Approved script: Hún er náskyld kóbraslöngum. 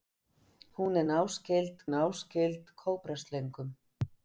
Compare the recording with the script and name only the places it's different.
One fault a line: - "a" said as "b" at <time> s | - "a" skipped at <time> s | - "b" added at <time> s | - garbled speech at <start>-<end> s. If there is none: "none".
- "náskyld" added at 1.9 s